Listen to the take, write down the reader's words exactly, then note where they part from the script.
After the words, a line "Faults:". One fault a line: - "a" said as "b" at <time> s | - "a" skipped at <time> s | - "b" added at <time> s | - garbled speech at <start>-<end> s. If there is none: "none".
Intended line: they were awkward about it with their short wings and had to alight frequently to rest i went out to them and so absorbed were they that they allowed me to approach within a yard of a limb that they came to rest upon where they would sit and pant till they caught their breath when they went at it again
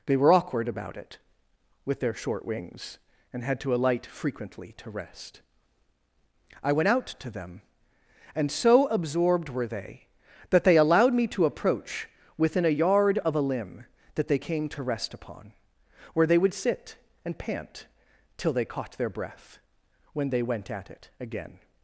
they were awkward about it with their short wings and had to alight frequently to rest i went out to them and so absorbed were they that they allowed me to approach within a yard of a limb that they came to rest upon where they would sit and pant till they caught their breath when they went at it again
Faults:
none